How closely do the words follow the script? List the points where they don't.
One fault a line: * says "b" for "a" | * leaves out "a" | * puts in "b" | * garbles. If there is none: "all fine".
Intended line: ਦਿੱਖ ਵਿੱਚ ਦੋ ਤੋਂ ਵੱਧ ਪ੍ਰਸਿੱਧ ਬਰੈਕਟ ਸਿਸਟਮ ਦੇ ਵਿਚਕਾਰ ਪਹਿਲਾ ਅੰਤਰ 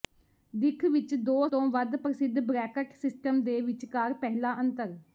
all fine